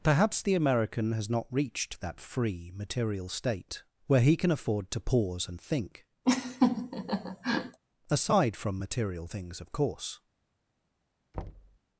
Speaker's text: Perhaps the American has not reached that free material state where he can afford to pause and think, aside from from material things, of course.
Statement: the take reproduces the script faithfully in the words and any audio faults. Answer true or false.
false